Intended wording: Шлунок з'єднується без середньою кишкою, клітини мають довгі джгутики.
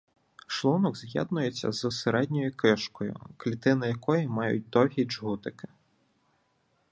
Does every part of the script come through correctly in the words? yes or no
no